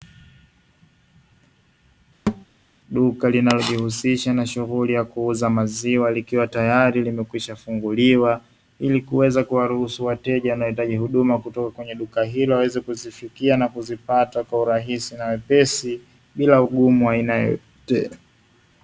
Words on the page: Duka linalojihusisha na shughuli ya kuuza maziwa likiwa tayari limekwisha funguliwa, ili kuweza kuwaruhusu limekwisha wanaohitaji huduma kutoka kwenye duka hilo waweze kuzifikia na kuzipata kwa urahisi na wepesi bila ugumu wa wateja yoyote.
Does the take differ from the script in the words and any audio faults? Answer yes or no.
yes